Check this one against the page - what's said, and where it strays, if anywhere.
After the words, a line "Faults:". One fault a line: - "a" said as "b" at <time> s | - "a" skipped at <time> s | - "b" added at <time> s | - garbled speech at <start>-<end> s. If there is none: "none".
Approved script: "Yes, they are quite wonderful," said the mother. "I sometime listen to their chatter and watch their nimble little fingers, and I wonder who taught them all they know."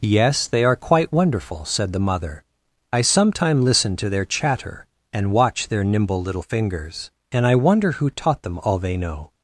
"Yes, they are quite wonderful," said the mother. "I sometime listen to their chatter and watch their nimble little fingers, and I wonder who taught them all they know."
Faults:
none